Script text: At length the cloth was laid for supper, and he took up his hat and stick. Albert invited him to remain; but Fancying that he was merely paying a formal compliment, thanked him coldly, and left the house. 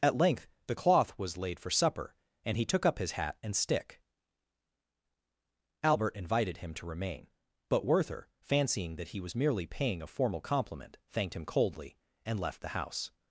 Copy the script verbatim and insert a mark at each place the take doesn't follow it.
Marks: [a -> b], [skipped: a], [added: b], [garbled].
At length the cloth was laid for supper, and he took up his hat and stick. Albert invited him to remain; but [added: Werther] Fancying that he was merely paying a formal compliment, thanked him coldly, and left the house.